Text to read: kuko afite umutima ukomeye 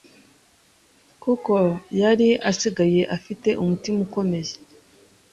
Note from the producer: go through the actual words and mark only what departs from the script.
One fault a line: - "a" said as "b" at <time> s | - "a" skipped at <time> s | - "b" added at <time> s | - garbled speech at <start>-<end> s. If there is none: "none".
- "yari asigaye" added at 2.0 s